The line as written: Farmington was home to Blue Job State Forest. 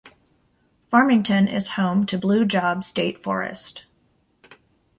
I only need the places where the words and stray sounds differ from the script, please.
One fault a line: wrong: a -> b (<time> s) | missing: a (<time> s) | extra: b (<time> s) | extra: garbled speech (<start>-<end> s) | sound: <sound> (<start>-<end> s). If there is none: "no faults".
wrong: was -> is (1.5 s)